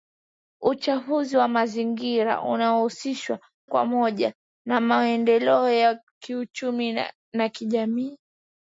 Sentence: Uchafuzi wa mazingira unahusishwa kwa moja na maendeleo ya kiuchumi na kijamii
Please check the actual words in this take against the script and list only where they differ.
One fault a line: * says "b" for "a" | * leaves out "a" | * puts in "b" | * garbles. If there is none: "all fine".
all fine